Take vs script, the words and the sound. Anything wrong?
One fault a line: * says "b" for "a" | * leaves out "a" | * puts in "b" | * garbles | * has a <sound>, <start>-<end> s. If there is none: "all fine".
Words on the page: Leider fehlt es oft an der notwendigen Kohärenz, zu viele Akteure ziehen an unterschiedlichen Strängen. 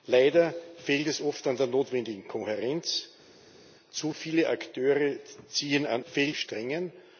* says "fehlt" for "unterschiedlichen"